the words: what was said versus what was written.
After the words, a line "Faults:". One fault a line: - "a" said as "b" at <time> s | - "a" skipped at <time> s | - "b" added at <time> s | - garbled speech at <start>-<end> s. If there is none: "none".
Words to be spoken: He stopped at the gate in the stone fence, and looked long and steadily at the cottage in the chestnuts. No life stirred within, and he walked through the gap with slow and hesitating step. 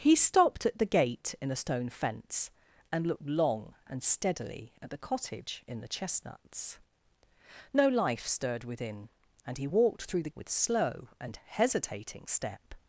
He stopped at the gate in the stone fence, and looked long and steadily at the cottage in the chestnuts. No life stirred within, and he walked through the with slow and hesitating step.
Faults:
- "gap" skipped at 10.3 s